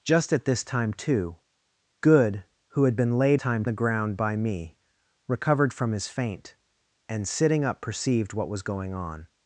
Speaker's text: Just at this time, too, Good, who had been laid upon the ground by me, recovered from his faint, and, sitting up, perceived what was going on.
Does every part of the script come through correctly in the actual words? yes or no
no